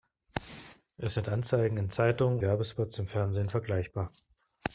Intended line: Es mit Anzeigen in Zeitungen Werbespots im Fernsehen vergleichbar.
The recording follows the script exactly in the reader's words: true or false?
true